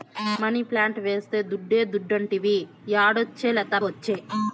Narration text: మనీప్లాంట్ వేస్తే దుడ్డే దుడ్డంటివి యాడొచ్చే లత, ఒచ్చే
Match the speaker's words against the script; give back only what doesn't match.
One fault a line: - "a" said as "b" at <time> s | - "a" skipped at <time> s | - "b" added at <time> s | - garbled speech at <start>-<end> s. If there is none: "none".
none